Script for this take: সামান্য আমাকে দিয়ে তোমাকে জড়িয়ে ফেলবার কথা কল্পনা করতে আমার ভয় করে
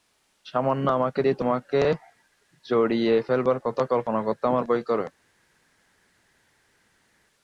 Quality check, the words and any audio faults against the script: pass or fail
pass